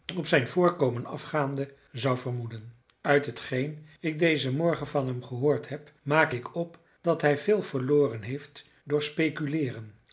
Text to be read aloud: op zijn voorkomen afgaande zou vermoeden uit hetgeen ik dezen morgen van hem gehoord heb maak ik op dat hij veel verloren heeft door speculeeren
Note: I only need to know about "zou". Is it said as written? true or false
true